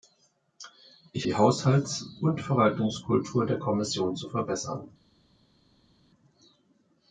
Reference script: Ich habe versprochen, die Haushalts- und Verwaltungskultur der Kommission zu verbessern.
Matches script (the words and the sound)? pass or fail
fail